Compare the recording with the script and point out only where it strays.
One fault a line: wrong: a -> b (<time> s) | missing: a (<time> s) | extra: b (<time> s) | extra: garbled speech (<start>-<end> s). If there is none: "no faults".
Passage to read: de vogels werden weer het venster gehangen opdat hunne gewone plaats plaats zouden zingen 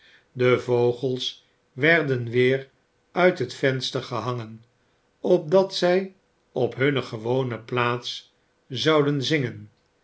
extra: uit (3.1 s)
extra: zij op (5.8 s)
missing: plaats (8.3 s)